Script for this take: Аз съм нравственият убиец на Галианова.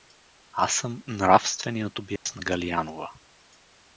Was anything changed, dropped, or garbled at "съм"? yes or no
no